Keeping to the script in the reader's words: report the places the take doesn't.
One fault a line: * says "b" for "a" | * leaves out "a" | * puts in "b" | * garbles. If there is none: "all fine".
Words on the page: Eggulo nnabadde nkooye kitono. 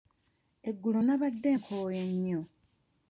* says "nnyo" for "kitono"